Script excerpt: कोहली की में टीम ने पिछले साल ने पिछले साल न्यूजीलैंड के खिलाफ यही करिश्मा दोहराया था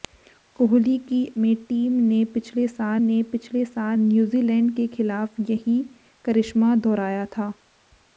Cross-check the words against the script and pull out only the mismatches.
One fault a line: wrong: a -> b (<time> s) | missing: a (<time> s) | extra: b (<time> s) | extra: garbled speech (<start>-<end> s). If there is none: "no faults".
no faults